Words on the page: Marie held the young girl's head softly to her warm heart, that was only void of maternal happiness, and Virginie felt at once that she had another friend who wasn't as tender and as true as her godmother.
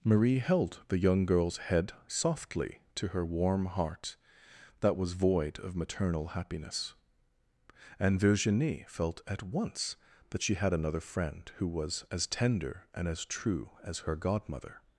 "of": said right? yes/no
yes